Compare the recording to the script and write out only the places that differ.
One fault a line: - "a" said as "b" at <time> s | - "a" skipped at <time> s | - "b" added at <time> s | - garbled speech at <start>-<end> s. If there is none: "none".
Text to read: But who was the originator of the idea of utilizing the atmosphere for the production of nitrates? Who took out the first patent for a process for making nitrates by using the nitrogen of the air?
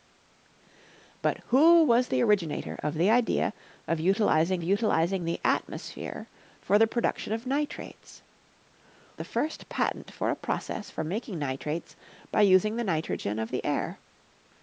- "utilizing" added at 4.6 s
- "Who took out" skipped at 8.2 s